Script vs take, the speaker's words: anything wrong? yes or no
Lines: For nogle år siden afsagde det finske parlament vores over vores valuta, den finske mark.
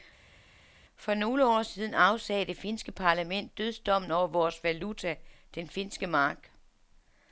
yes